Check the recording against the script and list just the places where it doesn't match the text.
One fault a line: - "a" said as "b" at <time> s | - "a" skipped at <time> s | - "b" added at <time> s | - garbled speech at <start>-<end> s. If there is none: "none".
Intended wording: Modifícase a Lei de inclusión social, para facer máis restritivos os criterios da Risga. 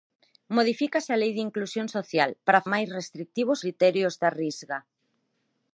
- "facer" skipped at 2.6 s
- "os" skipped at 3.6 s